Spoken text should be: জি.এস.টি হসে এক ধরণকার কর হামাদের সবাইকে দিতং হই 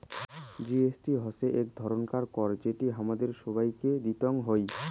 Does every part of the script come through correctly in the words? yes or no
no